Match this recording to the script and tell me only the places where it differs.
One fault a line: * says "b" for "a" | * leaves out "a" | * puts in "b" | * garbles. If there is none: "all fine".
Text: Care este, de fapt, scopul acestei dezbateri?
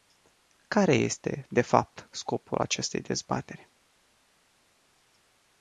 all fine